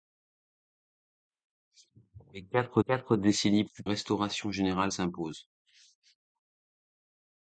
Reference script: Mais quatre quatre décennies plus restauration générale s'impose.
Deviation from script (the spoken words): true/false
false